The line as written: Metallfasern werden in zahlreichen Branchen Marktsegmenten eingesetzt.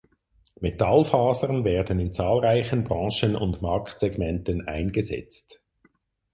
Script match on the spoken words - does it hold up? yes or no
no